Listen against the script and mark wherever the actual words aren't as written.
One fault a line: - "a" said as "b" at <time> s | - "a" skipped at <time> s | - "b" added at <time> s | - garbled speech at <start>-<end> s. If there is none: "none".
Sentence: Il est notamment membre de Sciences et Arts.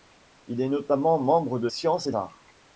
none